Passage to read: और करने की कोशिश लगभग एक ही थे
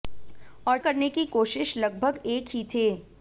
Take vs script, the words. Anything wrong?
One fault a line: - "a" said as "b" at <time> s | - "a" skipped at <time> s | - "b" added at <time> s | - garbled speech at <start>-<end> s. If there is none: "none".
none